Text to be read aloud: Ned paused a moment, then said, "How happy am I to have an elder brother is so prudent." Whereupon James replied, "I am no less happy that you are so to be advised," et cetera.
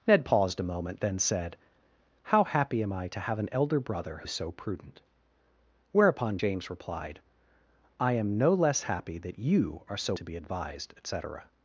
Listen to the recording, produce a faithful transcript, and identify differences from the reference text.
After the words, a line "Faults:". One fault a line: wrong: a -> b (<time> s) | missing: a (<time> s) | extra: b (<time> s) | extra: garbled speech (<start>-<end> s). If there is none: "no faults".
Ned paused a moment, then said, "How happy am I to have an elder brother is so prudent." Whereupon James replied, "I am no less happy that you are so to be advised," et cetera.
Faults:
no faults